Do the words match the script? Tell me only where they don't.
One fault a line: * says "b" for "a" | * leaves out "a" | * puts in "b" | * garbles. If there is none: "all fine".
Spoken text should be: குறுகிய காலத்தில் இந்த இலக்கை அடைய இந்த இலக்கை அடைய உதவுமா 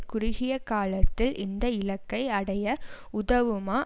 * leaves out "இந்த இலக்கை அடைய"